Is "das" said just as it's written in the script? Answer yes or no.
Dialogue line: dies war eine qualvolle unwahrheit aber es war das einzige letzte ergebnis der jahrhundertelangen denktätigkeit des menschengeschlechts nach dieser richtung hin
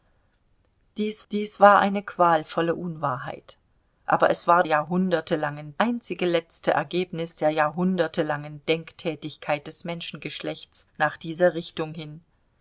no